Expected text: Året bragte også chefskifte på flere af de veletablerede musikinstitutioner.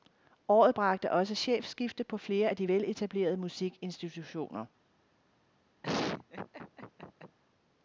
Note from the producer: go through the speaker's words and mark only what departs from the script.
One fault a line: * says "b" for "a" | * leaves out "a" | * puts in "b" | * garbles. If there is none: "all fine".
all fine